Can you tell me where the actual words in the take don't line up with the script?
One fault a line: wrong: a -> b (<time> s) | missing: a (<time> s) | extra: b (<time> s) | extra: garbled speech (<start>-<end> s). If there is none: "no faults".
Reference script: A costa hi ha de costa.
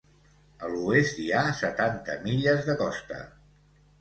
wrong: costa -> l'oest (0.8 s)
extra: setanta milles (1.6 s)